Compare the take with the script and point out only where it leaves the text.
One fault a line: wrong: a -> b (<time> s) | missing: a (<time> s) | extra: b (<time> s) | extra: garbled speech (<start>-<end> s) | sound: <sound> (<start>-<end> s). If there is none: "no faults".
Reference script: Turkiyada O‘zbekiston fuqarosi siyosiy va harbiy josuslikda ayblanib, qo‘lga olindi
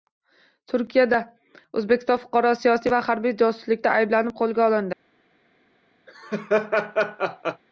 sound: laugh (6.1-7.6 s)